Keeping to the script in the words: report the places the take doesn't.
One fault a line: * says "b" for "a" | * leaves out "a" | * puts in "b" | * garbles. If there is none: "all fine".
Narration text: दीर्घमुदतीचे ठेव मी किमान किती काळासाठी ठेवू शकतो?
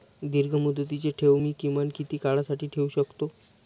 all fine